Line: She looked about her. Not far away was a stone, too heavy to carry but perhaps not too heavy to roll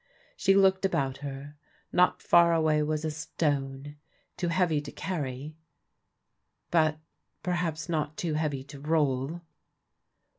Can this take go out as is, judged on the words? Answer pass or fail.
pass